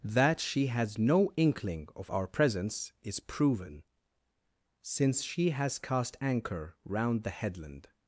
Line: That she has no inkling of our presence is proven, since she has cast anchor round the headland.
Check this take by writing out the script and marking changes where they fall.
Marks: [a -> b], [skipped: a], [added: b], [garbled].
That she has no inkling of our presence is proven, since she has cast anchor round the headland.